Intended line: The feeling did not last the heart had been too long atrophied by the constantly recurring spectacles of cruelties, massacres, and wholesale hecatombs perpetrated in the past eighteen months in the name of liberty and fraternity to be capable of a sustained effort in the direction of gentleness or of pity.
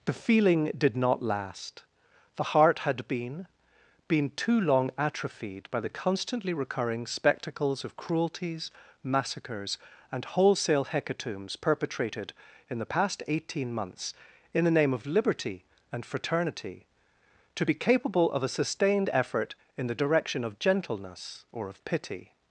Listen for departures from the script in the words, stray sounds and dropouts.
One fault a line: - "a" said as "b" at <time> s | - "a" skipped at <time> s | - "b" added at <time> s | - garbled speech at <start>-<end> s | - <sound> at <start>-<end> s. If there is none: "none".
- "been" added at 4.1 s